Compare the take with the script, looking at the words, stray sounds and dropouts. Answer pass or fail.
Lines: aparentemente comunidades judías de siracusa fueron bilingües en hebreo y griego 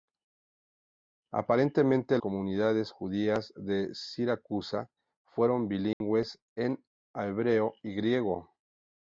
fail